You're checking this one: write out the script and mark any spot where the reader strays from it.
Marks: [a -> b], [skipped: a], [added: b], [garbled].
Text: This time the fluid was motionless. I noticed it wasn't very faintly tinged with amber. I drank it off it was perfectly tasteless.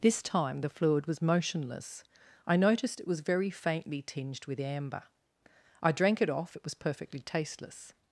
This time the fluid was motionless. I noticed it [wasn't -> was] very faintly tinged with amber. I drank it off it was perfectly tasteless.